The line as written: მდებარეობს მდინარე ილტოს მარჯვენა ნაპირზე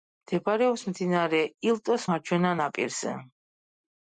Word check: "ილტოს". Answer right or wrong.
right